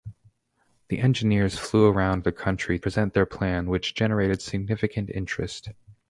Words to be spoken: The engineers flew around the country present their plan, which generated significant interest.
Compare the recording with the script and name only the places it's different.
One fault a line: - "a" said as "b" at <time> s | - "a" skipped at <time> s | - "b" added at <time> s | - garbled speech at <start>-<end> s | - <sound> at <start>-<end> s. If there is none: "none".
none